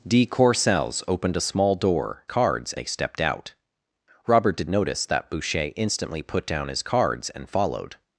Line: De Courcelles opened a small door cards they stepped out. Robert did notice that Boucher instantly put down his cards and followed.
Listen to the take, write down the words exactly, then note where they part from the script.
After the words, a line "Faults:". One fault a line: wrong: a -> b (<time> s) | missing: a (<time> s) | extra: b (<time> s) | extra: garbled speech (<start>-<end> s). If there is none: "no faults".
De Courcelles opened a small door cards they stepped out. Robert did notice that Boucher instantly put down his cards and followed.
Faults:
no faults